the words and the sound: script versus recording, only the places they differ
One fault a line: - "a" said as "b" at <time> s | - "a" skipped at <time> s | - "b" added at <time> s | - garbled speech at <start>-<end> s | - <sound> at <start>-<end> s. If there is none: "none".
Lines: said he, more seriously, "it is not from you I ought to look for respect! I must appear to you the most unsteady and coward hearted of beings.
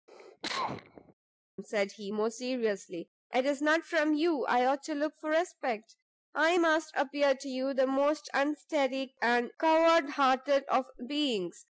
- cough at 0.1-1.1 s